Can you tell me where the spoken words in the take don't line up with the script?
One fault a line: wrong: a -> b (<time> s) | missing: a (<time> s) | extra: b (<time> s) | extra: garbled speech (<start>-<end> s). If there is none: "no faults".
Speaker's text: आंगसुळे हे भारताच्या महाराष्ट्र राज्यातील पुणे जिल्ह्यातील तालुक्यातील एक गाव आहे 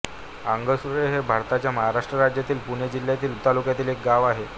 no faults